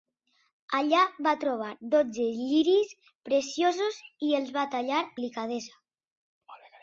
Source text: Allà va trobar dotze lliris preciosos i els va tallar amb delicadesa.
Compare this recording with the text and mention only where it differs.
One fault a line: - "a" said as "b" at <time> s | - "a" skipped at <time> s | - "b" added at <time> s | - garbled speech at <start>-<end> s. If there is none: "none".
- "amb" skipped at 5.1 s